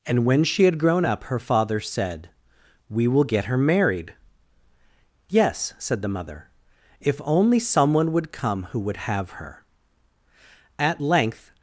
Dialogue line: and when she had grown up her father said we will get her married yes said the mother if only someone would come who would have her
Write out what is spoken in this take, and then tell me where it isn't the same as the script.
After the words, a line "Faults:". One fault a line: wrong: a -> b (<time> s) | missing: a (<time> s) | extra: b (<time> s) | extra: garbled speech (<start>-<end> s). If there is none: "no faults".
and when she had grown up her father said we will get her married yes said the mother if only someone would come who would have her at length
Faults:
extra: at length (10.8 s)